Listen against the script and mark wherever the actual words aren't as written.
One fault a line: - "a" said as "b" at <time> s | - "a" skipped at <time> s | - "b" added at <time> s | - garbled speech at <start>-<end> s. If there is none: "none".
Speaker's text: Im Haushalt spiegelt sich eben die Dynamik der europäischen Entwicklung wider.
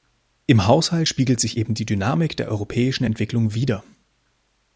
none